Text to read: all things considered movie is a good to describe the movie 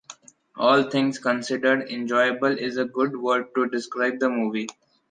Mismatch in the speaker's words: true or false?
true